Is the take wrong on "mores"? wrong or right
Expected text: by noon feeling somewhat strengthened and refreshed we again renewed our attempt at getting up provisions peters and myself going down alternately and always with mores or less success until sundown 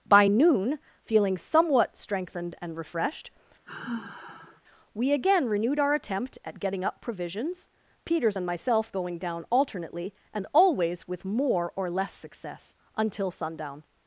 wrong